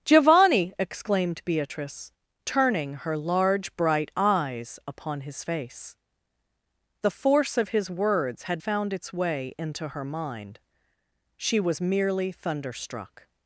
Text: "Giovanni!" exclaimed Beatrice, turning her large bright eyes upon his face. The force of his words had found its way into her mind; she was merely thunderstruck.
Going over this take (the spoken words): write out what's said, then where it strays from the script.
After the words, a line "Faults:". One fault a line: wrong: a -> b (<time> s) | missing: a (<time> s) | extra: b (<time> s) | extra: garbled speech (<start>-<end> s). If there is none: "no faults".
"Giovanni!" exclaimed Beatrice, turning her large bright eyes upon his face. The force of his words had found its way into her mind; she was merely thunderstruck.
Faults:
no faults